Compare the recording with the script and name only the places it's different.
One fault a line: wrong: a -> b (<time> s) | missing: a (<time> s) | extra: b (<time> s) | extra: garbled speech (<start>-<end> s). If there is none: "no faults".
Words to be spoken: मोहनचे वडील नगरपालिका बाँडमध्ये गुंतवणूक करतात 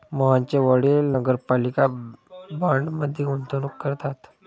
no faults